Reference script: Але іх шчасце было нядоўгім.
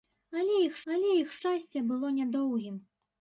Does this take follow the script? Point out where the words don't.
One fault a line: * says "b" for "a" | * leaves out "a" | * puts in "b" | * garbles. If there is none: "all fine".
* puts in "але іх"